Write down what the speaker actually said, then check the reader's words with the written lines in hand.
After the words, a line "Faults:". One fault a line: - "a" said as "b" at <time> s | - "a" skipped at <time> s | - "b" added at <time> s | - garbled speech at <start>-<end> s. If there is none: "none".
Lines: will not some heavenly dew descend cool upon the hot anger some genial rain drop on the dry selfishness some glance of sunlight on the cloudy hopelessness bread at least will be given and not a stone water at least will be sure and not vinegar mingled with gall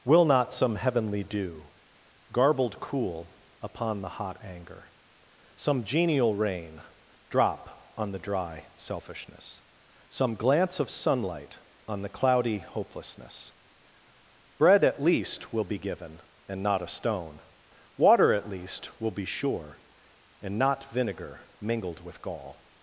will not some heavenly dew garbled cool upon the hot anger some genial rain drop on the dry selfishness some glance of sunlight on the cloudy hopelessness bread at least will be given and not a stone water at least will be sure and not vinegar mingled with gall
Faults:
- "descend" said as "garbled" at 2.3 s